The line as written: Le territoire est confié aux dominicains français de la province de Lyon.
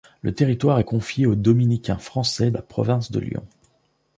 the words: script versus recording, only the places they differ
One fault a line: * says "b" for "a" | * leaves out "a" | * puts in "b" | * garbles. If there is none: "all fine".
* leaves out "de"